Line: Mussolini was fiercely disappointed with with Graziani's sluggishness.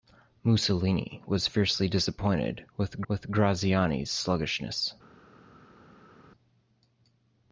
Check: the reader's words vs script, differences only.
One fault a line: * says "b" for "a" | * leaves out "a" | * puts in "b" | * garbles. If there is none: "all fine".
all fine